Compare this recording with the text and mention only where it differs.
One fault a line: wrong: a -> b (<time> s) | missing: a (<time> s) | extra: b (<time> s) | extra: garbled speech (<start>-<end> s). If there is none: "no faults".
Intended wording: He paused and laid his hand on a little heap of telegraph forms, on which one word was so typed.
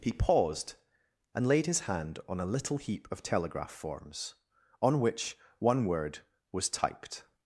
missing: so (6.7 s)